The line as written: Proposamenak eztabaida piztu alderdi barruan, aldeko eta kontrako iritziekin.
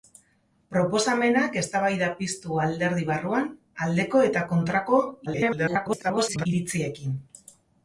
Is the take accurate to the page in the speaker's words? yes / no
no